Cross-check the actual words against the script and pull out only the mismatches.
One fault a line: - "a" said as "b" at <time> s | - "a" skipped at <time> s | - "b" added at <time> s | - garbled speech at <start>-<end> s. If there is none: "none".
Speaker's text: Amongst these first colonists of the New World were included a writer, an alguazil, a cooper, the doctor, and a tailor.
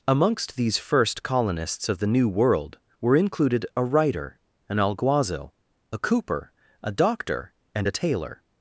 - "the" said as "a" at 6.8 s